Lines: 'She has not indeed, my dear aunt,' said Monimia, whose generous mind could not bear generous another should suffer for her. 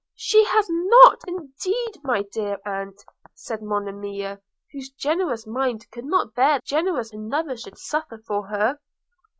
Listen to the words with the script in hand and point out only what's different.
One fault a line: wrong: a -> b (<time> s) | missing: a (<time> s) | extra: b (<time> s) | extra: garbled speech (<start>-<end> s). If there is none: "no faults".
no faults